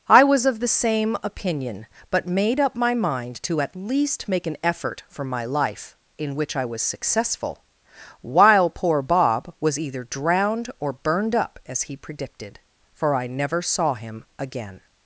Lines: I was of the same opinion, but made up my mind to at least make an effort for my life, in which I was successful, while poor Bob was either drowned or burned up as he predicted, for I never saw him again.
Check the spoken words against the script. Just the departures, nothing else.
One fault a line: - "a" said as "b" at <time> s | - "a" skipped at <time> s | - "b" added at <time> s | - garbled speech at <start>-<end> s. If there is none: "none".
none